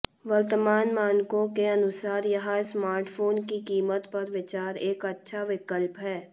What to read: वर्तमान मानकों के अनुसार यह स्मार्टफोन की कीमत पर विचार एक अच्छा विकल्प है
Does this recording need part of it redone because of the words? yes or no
no